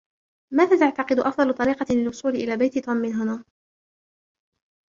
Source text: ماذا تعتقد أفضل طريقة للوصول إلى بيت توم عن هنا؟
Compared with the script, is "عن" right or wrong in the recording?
wrong